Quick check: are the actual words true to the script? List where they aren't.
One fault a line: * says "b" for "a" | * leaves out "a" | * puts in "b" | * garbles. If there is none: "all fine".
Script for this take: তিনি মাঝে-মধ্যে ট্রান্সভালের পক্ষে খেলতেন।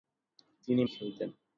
* leaves out "মাঝে-মধ্যে ট্রান্সভালের পক্ষে"